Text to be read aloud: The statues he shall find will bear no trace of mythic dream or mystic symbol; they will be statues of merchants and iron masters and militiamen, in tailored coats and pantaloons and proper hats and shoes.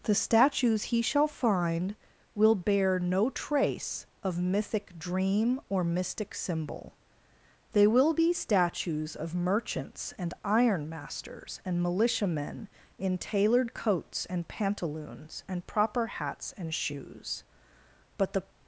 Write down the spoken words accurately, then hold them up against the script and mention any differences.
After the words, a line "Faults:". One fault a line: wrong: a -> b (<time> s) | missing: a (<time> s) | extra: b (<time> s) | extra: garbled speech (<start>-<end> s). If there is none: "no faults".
The statues he shall find will bear no trace of mythic dream or mystic symbol; they will be statues of merchants and iron masters and militiamen, in tailored coats and pantaloons and proper hats and shoes. But the
Faults:
extra: But the (18.2 s)